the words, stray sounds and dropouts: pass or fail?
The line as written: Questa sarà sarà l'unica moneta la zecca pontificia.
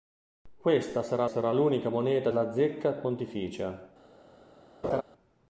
fail